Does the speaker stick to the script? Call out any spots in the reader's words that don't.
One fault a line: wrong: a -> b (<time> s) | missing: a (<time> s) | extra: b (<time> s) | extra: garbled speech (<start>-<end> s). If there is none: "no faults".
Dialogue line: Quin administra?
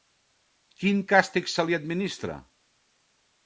extra: càstig se li (1.1 s)